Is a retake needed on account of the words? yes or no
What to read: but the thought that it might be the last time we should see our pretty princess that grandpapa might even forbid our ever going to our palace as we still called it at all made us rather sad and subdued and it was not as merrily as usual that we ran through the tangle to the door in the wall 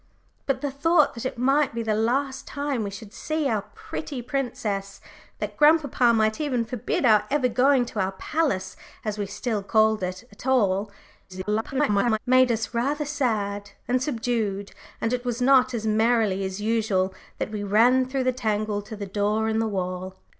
yes